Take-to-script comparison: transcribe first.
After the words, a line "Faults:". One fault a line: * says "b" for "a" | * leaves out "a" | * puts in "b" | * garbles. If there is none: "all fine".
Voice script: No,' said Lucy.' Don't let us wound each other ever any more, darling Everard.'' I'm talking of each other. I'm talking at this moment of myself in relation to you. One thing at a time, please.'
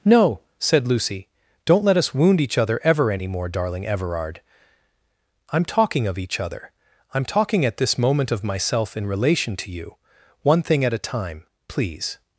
No,' said Lucy.' Don't let us wound each other ever any more, darling Everard.'' I'm talking of each other. I'm talking at this moment of myself in relation to you. One thing at a time, please.'
Faults:
all fine